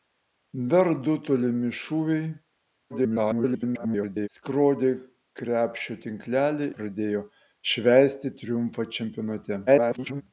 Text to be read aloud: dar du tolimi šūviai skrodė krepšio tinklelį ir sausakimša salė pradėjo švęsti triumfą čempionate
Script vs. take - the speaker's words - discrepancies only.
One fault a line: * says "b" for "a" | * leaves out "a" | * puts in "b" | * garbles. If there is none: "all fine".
* garbles
* leaves out "ir sausakimša salė"
* garbles